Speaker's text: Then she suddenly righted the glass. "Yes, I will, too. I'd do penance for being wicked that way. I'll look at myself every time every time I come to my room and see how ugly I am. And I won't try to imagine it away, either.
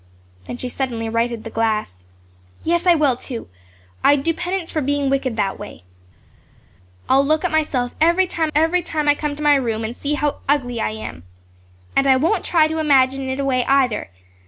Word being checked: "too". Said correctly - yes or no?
yes